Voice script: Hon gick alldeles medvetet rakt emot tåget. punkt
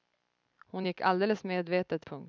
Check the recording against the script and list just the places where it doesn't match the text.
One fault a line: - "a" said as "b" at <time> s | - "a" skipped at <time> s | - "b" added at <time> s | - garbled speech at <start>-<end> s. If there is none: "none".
- "rakt emot tåget" skipped at 2.1 s